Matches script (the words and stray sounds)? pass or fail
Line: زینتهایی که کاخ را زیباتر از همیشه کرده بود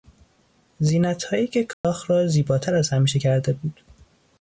fail